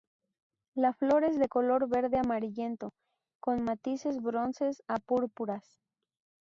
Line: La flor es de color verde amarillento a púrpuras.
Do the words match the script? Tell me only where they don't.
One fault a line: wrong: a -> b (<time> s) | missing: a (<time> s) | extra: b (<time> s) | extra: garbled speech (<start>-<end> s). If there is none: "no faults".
extra: con matices bronces (3.4 s)